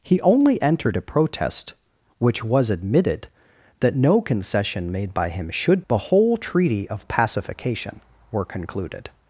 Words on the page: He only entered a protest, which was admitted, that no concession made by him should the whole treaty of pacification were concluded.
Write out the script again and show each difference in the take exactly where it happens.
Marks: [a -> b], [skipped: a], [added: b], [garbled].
He only entered a protest, which was admitted, that no concession made by him should the whole treaty of pacification were concluded.